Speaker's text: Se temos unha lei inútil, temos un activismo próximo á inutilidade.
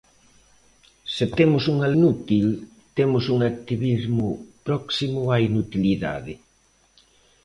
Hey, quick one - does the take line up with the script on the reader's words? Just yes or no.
no